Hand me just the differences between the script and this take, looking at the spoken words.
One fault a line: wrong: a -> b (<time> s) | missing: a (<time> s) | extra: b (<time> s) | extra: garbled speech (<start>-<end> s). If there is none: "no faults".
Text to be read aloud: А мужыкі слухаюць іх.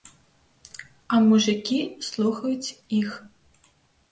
no faults